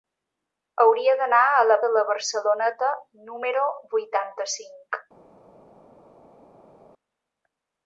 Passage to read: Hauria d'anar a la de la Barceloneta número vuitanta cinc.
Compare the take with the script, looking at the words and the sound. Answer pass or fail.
pass